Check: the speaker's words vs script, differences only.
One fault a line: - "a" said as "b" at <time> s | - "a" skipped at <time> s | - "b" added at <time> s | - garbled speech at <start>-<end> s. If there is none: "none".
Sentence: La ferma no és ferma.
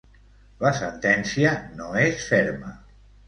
- "ferma" said as "sentència" at 0.8 s